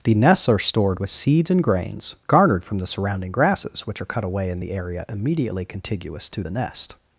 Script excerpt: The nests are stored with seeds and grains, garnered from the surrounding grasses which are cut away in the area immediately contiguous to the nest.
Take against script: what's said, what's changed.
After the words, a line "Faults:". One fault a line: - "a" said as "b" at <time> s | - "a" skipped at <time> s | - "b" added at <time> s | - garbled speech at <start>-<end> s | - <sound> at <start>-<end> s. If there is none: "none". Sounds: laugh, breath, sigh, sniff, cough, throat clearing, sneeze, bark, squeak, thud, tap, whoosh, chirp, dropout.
The nests are stored with seeds and grains, garnered from the surrounding grasses which are cut away in the area immediately contiguous to the nest.
Faults:
none